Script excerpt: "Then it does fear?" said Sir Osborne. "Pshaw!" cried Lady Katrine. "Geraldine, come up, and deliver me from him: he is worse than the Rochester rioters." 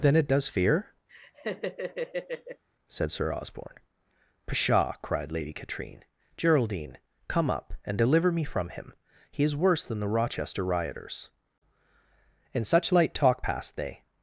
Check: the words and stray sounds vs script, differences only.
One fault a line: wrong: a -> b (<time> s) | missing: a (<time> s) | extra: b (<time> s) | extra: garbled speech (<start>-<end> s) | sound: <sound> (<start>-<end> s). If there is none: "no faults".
sound: laugh (1.1-2.6 s)
extra: In such light talk passed they (12.5 s)